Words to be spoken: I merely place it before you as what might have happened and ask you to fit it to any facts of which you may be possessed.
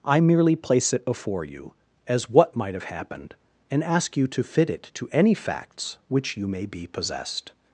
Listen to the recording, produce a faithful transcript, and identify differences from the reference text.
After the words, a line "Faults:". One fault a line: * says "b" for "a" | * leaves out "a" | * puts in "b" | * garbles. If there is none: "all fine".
I merely place it before you as what might have happened and ask you to fit it to any facts which you may be possessed.
Faults:
* leaves out "of"